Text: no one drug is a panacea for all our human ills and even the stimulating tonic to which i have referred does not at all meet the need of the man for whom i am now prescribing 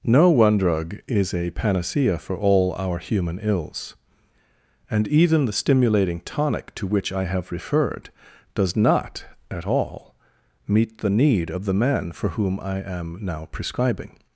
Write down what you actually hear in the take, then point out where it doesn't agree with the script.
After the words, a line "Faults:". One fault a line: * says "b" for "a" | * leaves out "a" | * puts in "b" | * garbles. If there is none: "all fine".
no one drug is a panacea for all our human ills and even the stimulating tonic to which i have referred does not at all meet the need of the man for whom i am now prescribing
Faults:
all fine